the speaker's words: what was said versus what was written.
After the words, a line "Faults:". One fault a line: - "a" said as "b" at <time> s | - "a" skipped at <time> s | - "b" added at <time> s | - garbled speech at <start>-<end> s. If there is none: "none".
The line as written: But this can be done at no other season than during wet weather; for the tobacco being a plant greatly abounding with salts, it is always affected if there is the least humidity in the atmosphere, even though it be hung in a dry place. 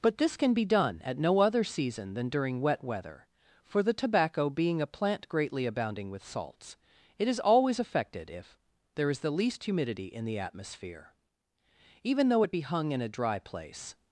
But this can be done at no other season than during wet weather; for the tobacco being a plant greatly abounding with salts, it is always affected if there is the least humidity in the atmosphere, even though it be hung in a dry place.
Faults:
none